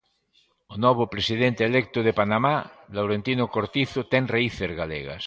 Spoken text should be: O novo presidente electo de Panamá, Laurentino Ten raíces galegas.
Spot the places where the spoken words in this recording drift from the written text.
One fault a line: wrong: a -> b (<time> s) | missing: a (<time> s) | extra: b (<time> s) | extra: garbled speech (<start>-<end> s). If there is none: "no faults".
extra: Cortizo (3.5 s)